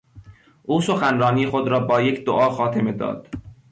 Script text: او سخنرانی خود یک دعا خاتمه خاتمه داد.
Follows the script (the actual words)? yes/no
no